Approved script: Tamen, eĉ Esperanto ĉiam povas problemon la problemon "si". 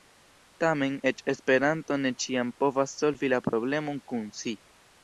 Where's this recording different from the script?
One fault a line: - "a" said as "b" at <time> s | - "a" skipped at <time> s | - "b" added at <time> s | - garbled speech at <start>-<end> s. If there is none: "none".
- "ne" added at 2.0 s
- "problemon" said as "solvi" at 3.0 s
- "kun" added at 4.1 s